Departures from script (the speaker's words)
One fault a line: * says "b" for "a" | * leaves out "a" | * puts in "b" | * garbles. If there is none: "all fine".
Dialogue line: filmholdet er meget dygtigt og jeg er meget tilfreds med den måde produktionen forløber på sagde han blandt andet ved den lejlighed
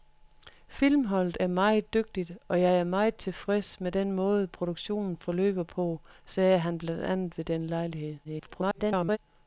* garbles